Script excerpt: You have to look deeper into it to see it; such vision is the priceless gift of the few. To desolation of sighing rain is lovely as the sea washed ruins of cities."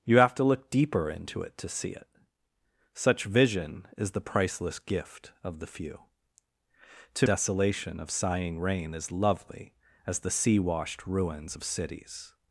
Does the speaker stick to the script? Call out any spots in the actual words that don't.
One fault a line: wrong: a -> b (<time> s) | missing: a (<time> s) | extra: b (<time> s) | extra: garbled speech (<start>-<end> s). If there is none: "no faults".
no faults